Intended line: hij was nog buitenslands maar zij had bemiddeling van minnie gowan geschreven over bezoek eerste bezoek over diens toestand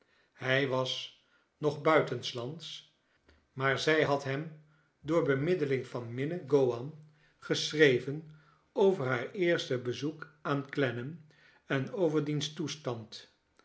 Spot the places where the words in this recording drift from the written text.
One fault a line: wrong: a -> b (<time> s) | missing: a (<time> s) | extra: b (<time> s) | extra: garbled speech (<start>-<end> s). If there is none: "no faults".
extra: hem door (4.2 s)
wrong: bezoek -> haar (9.1 s)
extra: aan clennam en (10.4 s)